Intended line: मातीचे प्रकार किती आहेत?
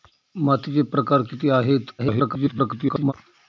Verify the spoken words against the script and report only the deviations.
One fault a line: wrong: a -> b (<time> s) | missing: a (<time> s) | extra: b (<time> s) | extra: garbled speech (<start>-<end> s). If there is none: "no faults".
extra: garbled speech (2.0-3.1 s)